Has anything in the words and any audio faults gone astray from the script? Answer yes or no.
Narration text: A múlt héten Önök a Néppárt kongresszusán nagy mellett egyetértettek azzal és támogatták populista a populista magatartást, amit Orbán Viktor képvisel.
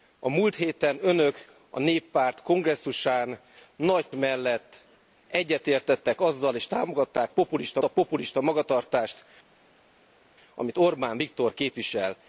no